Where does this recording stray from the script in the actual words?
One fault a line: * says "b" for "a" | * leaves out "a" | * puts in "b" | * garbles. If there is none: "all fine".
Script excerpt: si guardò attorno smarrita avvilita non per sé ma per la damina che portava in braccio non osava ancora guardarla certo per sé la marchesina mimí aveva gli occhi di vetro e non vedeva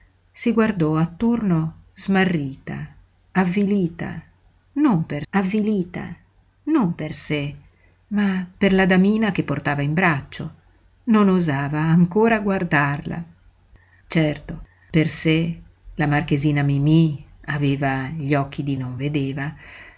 * puts in "avvilita non per"
* leaves out "vetro e"